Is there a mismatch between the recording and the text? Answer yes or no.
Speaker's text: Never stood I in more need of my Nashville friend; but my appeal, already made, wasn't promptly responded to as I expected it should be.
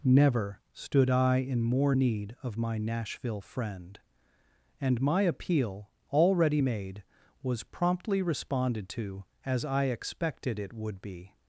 yes